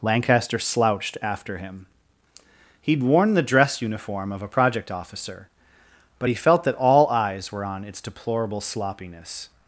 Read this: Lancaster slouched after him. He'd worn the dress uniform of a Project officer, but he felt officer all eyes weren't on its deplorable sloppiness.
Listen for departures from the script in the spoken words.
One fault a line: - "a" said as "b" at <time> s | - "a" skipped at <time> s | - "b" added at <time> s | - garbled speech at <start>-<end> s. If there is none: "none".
- "officer" said as "that" at 6.6 s
- "weren't" said as "were" at 7.5 s